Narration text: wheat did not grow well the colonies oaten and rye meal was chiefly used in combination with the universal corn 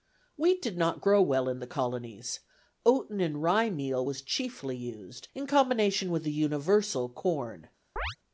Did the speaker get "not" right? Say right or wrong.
right